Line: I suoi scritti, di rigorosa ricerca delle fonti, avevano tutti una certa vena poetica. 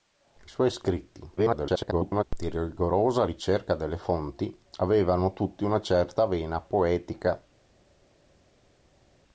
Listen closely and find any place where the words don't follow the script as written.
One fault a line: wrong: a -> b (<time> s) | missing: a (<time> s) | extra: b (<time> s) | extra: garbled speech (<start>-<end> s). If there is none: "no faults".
extra: garbled speech (1.4-2.2 s)